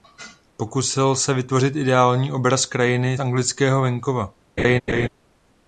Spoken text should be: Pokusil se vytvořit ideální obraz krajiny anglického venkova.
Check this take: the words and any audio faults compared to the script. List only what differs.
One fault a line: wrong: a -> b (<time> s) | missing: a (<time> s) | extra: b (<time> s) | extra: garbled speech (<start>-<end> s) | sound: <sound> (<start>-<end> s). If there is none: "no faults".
sound: laugh (4.6-5.1 s)